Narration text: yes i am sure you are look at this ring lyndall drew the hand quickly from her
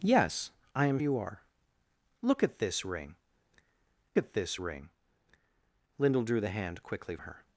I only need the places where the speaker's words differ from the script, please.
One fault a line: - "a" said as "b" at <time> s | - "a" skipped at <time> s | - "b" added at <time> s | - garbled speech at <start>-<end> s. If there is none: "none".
- "sure" skipped at 1.0 s
- "at this ring" added at 4.2 s
- "from" skipped at 7.2 s